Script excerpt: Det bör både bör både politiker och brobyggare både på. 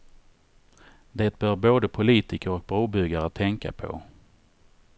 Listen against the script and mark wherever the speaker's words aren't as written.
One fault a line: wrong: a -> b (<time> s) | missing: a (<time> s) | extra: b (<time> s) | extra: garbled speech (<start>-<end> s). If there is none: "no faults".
missing: bör både (1.9 s)
wrong: både -> tänka (3.3 s)